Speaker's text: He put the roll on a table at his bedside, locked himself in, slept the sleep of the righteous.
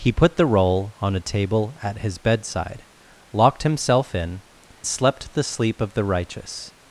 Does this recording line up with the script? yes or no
yes